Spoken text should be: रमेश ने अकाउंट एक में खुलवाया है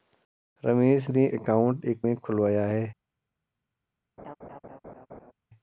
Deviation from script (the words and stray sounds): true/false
true